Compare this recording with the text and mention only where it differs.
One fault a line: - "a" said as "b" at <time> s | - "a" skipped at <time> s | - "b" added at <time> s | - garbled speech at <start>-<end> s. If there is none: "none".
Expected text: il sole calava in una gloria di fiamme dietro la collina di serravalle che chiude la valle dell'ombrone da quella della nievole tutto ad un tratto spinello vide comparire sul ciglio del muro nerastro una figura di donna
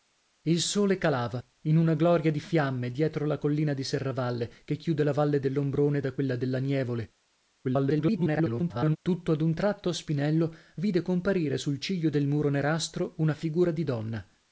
- garbled speech at 7.6-9.0 s